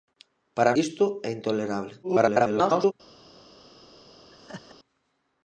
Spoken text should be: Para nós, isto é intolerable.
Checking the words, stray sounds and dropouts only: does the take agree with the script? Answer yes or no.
no